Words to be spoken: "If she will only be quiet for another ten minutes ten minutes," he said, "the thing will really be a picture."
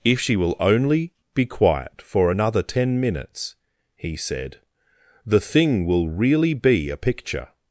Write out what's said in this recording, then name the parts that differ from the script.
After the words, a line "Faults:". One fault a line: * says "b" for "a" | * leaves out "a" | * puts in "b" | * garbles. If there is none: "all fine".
"If she will only be quiet for another ten minutes," he said, "the thing will really be a picture."
Faults:
* leaves out "ten minutes"